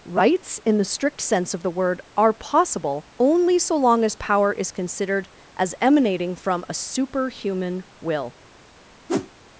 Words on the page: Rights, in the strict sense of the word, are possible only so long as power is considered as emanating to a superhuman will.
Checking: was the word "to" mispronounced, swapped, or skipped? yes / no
yes